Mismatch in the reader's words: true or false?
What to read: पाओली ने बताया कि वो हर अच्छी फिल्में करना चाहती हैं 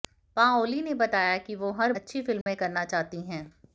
false